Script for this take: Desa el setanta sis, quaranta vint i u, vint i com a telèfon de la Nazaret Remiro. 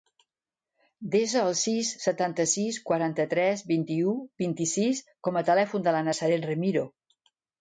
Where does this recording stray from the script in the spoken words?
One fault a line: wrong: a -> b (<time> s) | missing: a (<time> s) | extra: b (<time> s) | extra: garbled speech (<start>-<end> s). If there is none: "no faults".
extra: sis (1.6 s)
extra: tres (3.3 s)
extra: sis (4.7 s)